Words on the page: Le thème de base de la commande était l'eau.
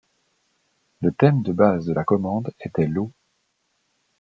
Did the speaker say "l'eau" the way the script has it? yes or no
yes